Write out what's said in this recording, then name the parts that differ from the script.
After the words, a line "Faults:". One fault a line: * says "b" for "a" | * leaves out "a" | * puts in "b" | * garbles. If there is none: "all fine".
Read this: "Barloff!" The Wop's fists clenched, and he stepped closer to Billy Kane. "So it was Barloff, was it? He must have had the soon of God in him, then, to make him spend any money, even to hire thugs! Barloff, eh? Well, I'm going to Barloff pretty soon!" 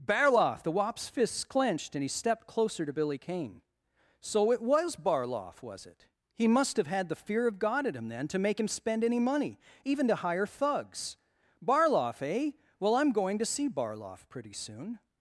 "Barloff!" The Wop's fists clenched, and he stepped closer to Billy Kane. "So it was Barloff, was it? He must have had the fear of God in him, then, to make him spend any money, even to hire thugs! Barloff, eh? Well, I'm going to see Barloff pretty soon!"
Faults:
* says "fear" for "soon"
* puts in "see"